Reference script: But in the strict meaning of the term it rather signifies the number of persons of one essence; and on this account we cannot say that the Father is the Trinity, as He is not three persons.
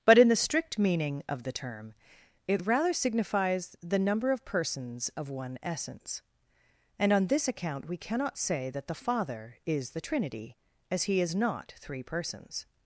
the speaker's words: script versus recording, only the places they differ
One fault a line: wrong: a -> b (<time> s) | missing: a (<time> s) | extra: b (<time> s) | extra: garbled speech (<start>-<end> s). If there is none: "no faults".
no faults